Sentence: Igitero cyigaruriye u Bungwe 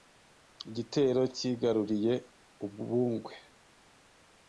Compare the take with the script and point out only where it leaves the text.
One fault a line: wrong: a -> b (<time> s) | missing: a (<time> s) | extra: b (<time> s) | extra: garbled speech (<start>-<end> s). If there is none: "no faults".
no faults